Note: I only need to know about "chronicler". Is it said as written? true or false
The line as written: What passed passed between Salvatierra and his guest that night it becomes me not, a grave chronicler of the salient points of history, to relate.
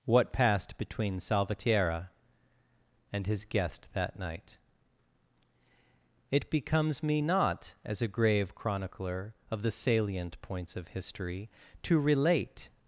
true